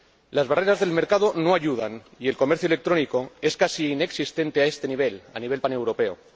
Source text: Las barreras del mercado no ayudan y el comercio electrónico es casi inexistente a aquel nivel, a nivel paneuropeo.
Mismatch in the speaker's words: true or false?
true